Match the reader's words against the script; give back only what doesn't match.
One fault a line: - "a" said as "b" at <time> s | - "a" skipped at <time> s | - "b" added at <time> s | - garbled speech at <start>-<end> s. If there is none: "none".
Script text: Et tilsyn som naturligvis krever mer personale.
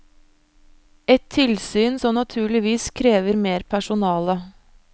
none